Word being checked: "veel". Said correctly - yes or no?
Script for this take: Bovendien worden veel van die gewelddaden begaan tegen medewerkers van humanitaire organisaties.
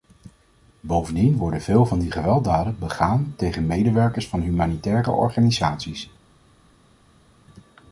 yes